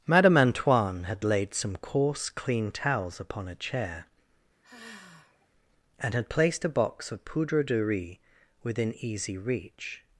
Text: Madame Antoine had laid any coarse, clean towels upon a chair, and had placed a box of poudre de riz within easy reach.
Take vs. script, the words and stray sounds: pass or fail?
fail